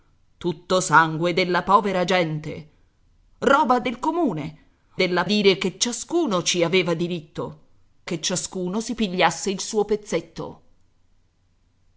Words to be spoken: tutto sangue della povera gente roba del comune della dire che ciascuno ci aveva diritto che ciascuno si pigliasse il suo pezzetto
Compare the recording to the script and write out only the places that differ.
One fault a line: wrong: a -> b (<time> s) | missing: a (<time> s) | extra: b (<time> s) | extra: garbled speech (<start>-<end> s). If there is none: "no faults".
no faults